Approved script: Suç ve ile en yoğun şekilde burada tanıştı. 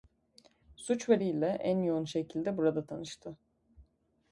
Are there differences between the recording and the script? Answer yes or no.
no